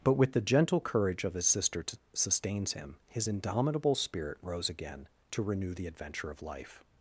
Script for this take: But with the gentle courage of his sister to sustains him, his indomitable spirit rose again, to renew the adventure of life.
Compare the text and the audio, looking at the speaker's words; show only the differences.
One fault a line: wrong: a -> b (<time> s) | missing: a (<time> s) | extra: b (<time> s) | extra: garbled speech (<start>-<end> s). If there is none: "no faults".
no faults